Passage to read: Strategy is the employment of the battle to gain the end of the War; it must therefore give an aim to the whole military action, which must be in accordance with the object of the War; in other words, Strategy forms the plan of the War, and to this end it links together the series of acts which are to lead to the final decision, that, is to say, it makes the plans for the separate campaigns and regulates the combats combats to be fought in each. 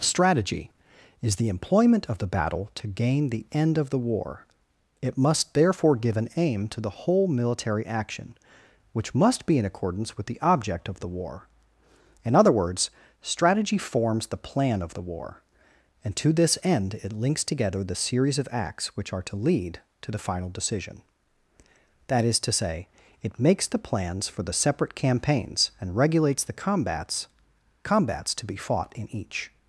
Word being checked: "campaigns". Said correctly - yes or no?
yes